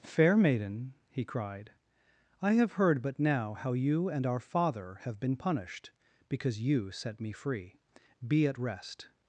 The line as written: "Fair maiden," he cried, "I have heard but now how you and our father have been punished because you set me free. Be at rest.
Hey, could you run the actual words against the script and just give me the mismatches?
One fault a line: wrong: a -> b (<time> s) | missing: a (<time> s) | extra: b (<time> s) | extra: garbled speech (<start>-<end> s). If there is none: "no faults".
no faults